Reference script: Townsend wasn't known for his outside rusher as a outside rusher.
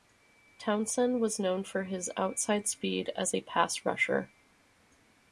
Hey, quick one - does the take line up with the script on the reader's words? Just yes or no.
no